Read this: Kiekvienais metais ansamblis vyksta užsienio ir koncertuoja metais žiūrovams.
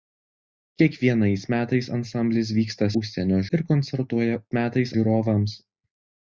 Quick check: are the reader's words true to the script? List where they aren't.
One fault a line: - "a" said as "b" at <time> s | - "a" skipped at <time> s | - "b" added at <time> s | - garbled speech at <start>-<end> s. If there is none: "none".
none